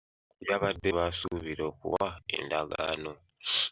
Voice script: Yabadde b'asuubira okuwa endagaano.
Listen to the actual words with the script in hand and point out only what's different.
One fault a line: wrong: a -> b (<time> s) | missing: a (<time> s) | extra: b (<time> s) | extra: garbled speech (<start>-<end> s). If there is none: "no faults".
no faults